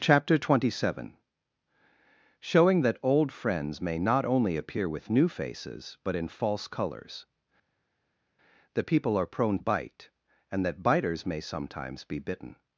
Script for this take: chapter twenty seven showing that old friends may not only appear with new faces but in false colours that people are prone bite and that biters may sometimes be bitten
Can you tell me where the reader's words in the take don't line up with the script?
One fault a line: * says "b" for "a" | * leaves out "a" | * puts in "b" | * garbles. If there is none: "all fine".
all fine